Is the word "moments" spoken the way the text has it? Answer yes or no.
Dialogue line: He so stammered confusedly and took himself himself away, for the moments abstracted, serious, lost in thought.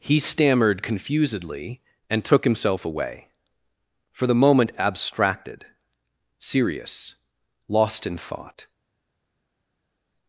no